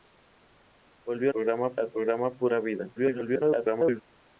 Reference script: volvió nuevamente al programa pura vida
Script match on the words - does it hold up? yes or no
no